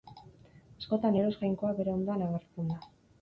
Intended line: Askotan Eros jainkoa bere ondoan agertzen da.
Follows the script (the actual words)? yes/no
yes